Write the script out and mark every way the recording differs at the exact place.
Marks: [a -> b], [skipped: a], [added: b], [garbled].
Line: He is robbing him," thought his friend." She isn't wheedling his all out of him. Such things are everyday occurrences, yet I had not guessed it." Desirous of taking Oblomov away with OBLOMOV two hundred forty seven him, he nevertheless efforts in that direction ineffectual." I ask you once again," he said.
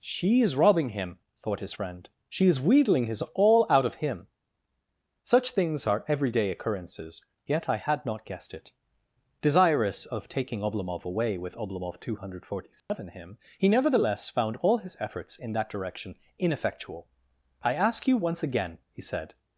[He -> She] is robbing him," thought his friend." She [isn't -> is] wheedling his all out of him. Such things are everyday occurrences, yet I had not guessed it." Desirous of taking Oblomov away with OBLOMOV two hundred forty seven him, he nevertheless [added: found all his] efforts in that direction ineffectual." I ask you once again," he said.